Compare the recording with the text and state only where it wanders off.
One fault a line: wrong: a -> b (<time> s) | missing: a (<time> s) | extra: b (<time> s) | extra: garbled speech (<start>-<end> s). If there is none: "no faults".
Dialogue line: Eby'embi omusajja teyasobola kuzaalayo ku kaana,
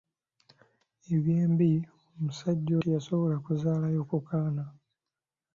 no faults